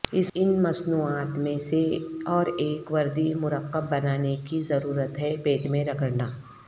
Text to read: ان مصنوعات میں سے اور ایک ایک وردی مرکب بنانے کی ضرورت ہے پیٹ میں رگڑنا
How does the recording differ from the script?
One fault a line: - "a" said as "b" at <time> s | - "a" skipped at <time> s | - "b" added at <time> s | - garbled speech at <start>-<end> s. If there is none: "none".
- "ایک" skipped at 2.9 s